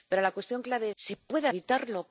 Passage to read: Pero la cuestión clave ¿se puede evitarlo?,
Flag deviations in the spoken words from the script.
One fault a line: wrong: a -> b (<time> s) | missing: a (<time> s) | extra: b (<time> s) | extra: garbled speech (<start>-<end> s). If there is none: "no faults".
no faults